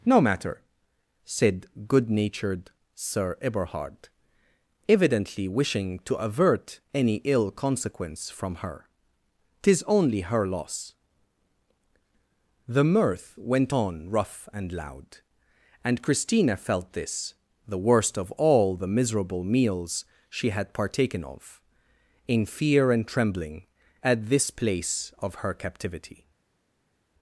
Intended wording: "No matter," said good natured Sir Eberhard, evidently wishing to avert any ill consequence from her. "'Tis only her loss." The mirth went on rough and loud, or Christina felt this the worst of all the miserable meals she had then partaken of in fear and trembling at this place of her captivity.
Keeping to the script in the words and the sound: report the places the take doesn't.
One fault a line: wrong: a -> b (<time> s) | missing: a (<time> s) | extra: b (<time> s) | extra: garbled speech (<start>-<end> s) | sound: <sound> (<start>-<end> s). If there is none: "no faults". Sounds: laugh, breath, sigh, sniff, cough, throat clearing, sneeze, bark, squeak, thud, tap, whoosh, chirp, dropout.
wrong: or -> and (15.8 s)
missing: then (20.7 s)